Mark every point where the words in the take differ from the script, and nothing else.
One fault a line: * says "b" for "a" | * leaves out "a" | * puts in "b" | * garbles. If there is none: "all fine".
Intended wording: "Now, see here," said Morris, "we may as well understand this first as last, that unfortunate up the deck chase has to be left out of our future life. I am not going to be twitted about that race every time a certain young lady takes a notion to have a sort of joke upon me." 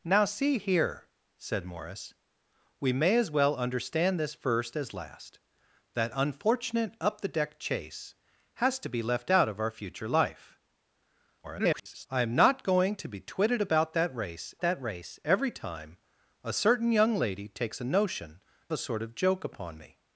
* garbles
* puts in "that race"
* leaves out "to have"